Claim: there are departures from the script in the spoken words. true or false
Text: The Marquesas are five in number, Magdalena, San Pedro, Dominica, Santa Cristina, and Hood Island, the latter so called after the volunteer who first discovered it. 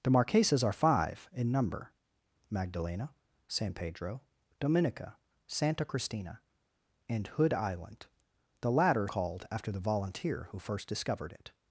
true